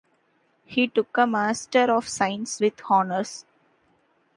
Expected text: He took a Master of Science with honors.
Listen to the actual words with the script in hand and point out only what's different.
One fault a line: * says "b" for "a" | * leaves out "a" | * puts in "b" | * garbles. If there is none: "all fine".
all fine